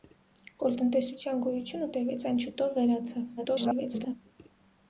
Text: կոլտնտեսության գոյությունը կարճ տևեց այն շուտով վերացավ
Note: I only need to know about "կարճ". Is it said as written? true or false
false